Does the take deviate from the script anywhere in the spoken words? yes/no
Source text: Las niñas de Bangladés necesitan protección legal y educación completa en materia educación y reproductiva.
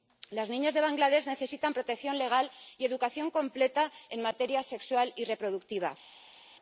yes